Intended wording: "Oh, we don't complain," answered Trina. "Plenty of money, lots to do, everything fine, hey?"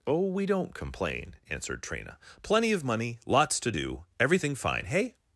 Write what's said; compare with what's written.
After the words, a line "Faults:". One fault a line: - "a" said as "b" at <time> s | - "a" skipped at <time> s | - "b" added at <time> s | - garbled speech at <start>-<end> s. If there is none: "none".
"Oh, we don't complain," answered Trina. "Plenty of money, lots to do, everything fine, hey?"
Faults:
none